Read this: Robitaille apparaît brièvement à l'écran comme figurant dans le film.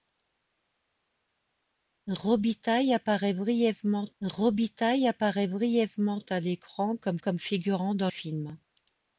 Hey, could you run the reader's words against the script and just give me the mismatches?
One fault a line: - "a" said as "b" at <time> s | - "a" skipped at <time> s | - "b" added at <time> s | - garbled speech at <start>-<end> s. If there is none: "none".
- "robitaille apparaît brièvement" added at 4.2 s
- "comme" added at 7.2 s
- "le" skipped at 8.1 s